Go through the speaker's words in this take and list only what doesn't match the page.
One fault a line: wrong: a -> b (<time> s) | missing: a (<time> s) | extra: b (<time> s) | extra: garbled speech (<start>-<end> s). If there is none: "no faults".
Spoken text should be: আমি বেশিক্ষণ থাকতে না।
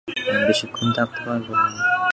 extra: পারব (1.2 s)